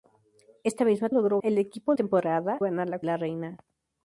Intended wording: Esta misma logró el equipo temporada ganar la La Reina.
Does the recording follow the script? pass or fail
pass